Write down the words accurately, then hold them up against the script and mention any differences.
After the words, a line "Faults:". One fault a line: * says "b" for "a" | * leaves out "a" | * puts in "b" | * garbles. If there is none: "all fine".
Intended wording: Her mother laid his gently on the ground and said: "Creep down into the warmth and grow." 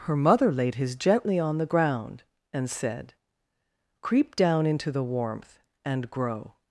Her mother laid his gently on the ground and said: "Creep down into the warmth and grow."
Faults:
all fine